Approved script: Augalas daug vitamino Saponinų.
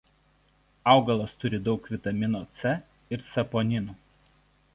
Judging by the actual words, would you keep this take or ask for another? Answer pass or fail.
fail